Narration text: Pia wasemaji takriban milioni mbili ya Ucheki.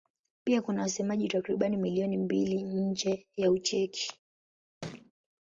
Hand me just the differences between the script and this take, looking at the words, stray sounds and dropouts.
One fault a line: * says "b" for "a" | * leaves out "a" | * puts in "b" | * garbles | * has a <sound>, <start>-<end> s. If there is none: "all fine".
* puts in "kuna"
* puts in "nje"
* has a thud, 4.8-5.1 s